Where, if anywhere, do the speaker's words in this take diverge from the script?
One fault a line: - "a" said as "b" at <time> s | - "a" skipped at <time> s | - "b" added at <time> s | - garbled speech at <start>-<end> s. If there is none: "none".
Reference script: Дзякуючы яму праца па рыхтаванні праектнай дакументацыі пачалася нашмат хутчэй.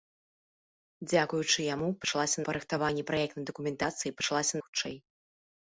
- "праца" said as "пачалася" at 2.1 s
- "нашмат" skipped at 4.6 s